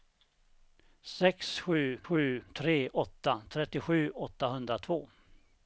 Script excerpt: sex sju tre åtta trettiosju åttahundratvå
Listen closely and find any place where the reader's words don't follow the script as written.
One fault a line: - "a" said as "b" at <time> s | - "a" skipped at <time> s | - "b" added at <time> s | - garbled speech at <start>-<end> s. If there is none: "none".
- "sju" added at 2.0 s